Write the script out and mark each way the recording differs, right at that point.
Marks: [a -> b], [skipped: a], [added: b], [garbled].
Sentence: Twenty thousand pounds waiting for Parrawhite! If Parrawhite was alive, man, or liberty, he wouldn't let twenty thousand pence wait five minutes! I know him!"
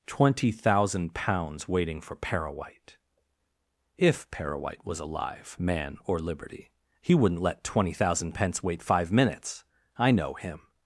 Twenty thousand pounds waiting for Parrawhite! If Parrawhite was alive, man, or liberty, he wouldn't let twenty thousand pence wait five minutes! I know him!"